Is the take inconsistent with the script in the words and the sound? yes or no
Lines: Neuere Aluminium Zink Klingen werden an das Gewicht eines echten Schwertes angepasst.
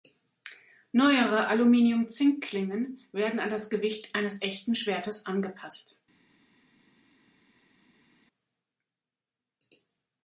no